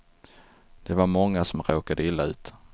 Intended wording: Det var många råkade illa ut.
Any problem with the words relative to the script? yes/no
yes